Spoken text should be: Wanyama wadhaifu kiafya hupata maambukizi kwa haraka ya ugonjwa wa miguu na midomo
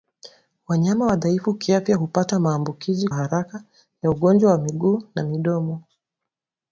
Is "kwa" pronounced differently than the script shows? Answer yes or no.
yes